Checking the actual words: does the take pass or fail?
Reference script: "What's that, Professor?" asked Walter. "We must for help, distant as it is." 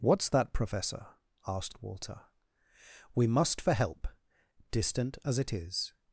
pass